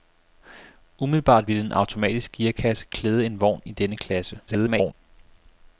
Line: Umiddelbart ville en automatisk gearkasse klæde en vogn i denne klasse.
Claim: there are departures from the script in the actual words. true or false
true